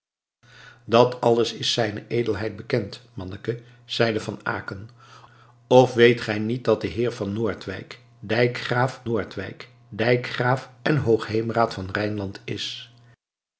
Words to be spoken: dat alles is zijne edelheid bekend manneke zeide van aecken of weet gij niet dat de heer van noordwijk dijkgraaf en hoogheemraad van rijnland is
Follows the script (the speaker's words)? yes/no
no